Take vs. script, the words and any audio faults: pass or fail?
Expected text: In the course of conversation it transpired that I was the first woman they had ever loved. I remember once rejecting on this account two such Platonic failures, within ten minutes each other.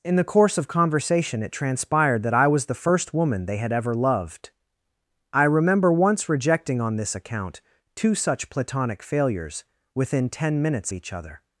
pass